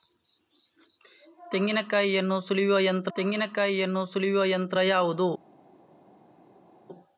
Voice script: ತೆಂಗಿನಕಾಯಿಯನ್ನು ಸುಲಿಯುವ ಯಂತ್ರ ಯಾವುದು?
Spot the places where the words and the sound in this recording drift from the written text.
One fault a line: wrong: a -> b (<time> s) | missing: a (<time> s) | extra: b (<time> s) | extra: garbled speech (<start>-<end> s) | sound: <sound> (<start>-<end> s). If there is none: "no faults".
extra: ತೆಂಗಿನಕಾಯಿಯನ್ನು ಸುಲಿಯುವ ಯಂತ್ರ (3.2 s)